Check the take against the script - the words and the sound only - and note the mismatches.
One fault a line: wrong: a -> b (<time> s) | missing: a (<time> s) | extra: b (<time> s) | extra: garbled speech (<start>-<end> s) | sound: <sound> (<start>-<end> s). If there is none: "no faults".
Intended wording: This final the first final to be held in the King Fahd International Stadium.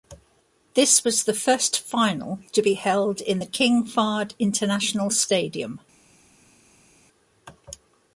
wrong: final -> was (1.0 s)